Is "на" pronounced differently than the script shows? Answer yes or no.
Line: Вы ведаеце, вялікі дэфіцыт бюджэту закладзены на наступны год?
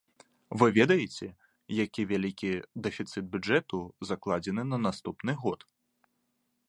no